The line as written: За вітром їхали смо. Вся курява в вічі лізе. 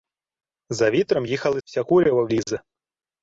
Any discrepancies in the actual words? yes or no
yes